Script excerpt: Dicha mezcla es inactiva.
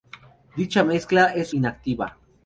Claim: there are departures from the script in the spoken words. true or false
false